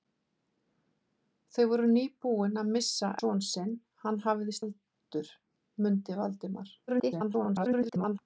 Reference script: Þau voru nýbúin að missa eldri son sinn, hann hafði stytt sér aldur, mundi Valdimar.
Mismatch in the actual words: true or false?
true